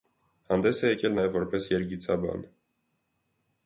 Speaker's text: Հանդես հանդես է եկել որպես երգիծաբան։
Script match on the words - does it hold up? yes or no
no